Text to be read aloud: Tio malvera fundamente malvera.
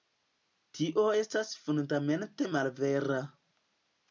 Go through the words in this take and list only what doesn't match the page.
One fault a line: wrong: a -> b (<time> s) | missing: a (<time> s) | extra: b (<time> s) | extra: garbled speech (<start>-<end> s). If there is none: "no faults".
wrong: malvera -> estas (1.2 s)